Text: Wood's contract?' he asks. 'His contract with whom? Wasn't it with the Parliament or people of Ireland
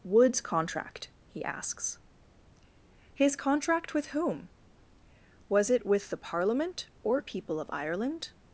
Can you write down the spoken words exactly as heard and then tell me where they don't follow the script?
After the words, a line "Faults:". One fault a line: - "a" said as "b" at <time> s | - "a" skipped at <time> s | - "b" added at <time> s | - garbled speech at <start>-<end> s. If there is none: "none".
Wood's contract?' he asks. 'His contract with whom? Was it with the Parliament or people of Ireland
Faults:
- "Wasn't" said as "Was" at 5.5 s